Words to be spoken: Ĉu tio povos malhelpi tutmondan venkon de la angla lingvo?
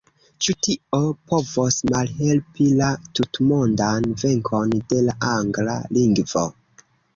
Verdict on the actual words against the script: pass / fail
fail